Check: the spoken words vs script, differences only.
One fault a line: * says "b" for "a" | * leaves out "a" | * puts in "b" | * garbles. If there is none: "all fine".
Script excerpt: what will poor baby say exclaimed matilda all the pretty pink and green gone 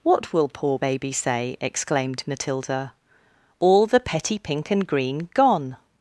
* says "petty" for "pretty"